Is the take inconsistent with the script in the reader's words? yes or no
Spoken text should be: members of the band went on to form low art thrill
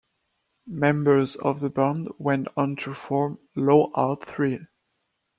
no